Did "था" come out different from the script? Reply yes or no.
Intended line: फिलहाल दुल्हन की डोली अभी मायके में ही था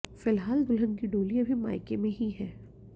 yes